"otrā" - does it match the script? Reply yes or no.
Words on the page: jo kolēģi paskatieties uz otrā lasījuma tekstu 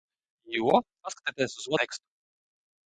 no